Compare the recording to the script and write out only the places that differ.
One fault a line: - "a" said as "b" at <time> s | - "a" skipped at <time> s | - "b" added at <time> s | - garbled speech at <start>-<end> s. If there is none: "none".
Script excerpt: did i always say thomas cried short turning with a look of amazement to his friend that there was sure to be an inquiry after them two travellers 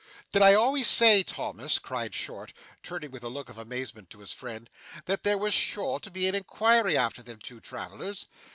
none